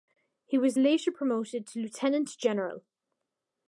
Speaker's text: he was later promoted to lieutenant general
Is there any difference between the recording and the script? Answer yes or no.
no